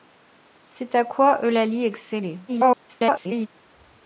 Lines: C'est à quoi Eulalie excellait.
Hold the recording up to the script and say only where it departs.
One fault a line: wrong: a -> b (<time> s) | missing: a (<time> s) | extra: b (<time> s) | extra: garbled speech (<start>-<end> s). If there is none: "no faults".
extra: garbled speech (2.5-3.5 s)